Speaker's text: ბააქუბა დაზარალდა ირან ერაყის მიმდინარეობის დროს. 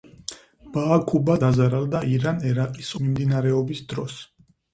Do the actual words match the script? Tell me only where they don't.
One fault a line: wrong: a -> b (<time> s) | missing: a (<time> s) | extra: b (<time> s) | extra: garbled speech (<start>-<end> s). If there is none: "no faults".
no faults